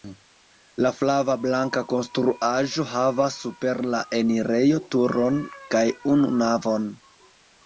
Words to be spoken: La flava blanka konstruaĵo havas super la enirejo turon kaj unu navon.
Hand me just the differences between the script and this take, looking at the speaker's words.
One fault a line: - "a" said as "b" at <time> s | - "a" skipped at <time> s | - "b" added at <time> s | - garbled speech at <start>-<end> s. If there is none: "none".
none